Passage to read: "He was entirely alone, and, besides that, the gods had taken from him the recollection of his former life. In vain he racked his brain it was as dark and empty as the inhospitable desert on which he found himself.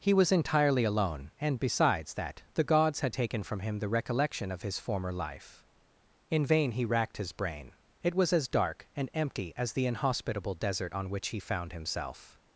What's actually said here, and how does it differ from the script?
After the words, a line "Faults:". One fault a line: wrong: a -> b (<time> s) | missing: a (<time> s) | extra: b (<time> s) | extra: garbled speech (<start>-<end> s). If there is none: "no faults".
"He was entirely alone, and, besides that, the gods had taken from him the recollection of his former life. In vain he racked his brain it was as dark and empty as the inhospitable desert on which he found himself.
Faults:
no faults